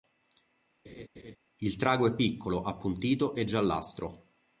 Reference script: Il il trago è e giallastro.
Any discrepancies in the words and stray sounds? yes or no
yes